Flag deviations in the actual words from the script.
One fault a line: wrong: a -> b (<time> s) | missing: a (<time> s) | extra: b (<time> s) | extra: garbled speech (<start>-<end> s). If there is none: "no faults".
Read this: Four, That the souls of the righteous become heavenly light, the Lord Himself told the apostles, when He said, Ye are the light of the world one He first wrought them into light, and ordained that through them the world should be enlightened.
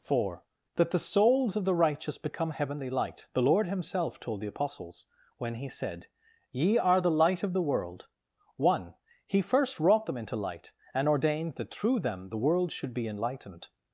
no faults